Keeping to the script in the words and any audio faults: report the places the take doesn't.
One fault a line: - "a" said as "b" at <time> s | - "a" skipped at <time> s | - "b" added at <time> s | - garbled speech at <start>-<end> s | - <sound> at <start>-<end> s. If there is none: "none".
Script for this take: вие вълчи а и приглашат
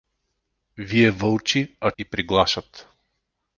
none